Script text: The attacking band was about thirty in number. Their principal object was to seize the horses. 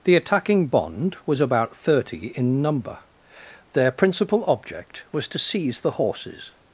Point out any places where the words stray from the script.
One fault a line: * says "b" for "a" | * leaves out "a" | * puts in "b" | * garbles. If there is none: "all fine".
* says "bond" for "band"